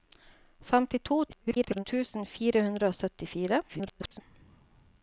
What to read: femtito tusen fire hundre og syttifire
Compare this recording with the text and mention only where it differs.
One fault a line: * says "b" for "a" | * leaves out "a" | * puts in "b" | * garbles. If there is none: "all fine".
* garbles
* garbles